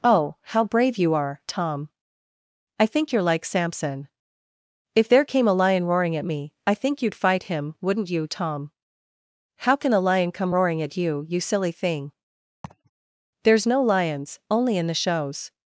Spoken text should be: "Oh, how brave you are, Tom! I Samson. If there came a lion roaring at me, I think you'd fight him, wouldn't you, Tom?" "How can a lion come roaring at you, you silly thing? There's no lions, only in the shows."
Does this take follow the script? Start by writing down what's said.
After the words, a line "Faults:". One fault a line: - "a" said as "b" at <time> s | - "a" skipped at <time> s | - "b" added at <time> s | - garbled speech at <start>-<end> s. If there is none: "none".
"Oh, how brave you are, Tom! I think you're like Samson. If there came a lion roaring at me, I think you'd fight him, wouldn't you, Tom?" "How can a lion come roaring at you, you silly thing? There's no lions, only in the shows."
Faults:
- "think you're like" added at 2.9 s